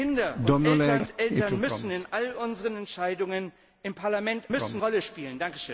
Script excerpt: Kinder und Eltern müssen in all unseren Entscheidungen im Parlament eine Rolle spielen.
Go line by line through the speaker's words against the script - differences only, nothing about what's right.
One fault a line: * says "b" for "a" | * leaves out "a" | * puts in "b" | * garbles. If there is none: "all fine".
* says "müssen" for "eine"